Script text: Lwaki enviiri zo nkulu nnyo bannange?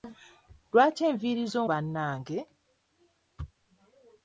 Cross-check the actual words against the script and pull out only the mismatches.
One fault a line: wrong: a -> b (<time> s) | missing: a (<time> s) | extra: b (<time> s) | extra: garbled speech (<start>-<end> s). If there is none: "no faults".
missing: nkulu nnyo (1.6 s)